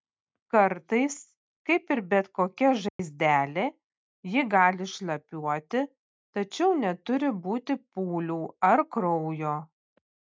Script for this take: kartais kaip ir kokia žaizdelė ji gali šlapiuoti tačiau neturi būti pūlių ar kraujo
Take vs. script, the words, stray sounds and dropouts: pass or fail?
fail